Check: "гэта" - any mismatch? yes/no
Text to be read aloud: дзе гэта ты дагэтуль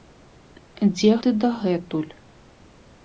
yes